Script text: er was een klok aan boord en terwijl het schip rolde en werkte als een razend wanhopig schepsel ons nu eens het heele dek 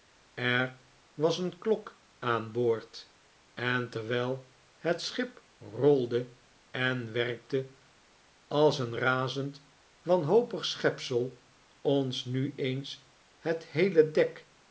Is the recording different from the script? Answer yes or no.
no